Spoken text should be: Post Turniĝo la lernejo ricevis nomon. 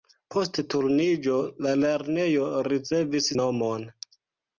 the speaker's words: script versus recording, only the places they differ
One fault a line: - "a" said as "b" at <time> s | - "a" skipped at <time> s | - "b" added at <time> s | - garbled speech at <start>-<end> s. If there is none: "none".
none